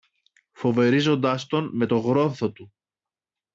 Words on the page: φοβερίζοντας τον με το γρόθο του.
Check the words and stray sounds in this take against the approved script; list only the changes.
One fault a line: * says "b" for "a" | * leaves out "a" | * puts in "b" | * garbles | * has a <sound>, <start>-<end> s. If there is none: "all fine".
all fine